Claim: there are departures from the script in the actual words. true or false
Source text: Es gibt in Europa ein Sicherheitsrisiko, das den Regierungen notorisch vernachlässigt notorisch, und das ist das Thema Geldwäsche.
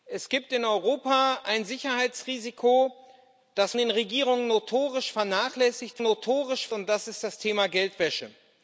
false